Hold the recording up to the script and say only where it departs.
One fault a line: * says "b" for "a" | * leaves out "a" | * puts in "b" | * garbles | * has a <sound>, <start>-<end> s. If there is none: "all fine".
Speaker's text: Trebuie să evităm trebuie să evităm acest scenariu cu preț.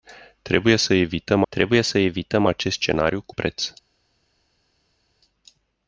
all fine